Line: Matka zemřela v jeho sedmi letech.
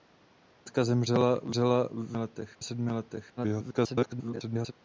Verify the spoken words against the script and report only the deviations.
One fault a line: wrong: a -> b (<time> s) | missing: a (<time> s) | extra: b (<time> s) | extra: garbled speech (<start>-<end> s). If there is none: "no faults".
wrong: jeho -> letech (2.2 s)
extra: garbled speech (3.4-4.7 s)